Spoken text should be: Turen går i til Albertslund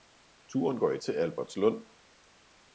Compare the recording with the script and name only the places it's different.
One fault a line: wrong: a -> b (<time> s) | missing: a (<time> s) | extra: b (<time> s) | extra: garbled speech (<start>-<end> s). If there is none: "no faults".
no faults